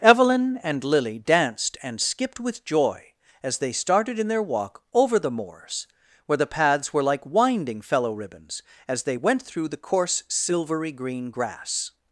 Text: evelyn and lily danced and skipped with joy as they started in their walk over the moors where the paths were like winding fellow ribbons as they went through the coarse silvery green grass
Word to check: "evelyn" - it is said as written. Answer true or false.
true